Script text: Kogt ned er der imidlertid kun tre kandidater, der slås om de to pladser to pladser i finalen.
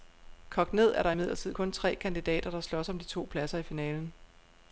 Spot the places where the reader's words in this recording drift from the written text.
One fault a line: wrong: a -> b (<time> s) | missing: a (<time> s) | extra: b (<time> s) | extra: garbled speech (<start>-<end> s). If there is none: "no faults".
missing: to pladser (3.6 s)